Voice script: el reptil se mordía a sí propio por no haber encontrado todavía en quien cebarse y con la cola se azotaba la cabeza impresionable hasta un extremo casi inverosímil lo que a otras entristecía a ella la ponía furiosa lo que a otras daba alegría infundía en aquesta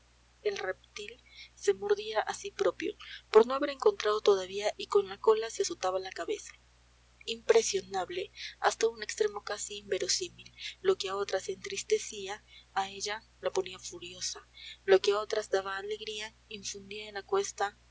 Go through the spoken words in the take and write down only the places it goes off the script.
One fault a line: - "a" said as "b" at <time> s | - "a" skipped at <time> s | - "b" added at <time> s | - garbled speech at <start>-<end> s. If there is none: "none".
- "en quien cebarse" skipped at 4.7 s